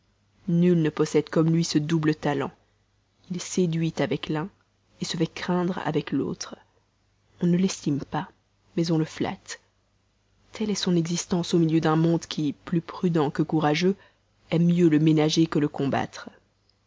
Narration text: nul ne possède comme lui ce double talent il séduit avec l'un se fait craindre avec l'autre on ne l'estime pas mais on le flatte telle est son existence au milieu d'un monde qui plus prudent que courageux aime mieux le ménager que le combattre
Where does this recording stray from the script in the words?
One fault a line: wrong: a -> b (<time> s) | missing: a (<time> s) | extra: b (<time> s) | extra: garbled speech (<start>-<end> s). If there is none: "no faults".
no faults